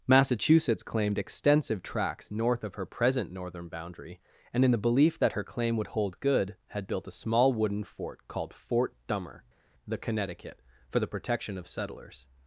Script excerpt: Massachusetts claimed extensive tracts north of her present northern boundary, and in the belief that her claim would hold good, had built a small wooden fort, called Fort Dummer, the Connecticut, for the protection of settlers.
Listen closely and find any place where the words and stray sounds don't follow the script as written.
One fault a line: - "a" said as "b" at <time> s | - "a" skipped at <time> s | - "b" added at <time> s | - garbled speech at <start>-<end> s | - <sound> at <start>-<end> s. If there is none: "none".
none